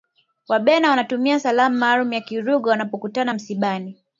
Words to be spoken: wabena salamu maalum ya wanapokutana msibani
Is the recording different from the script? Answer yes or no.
yes